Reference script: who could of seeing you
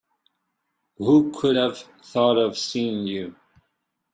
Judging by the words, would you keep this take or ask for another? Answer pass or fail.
fail